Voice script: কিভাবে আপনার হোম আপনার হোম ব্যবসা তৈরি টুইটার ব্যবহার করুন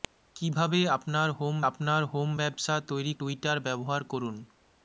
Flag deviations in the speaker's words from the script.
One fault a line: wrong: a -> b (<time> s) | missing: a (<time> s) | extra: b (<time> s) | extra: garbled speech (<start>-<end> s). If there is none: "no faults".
no faults